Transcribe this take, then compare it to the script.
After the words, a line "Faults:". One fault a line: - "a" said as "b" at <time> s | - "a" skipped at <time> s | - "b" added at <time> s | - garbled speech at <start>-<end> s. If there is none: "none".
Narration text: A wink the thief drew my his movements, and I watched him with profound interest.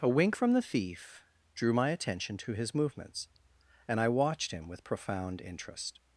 A wink from the thief drew my attention to his movements, and I watched him with profound interest.
Faults:
- "from" added at 0.3 s
- "attention to" added at 1.9 s